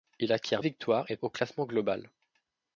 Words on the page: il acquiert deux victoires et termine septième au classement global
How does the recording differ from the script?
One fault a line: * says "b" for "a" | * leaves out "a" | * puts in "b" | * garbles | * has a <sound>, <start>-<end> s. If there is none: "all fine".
* leaves out "deux"
* leaves out "termine septième"